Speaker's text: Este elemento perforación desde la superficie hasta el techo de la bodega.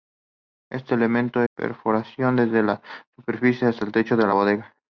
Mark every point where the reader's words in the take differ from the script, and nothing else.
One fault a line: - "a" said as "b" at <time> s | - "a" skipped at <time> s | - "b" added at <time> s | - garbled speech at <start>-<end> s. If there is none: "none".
none